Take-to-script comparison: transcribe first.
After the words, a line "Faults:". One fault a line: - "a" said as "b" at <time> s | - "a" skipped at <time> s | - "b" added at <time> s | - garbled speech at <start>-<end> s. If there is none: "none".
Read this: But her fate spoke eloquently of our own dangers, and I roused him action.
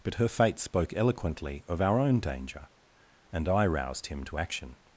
But her fate spoke eloquently of our own danger, and I roused him to action.
Faults:
- "dangers" said as "danger" at 2.2 s
- "to" added at 4.3 s